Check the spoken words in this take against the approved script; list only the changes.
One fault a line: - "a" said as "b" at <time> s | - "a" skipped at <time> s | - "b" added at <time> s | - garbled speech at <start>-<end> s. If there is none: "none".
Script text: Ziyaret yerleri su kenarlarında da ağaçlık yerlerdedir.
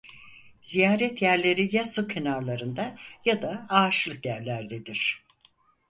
- "ya" added at 1.8 s
- "ya" added at 3.2 s